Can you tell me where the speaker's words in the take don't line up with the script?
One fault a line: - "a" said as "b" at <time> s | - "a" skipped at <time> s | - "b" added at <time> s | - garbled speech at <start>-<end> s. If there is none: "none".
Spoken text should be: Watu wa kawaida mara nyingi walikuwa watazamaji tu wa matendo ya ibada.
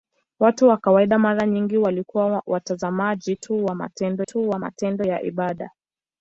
- "tu wa matendo" added at 4.2 s